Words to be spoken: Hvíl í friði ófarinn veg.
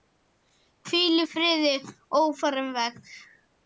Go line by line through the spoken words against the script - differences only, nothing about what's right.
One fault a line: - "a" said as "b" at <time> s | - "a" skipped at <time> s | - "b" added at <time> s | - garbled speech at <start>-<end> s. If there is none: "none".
none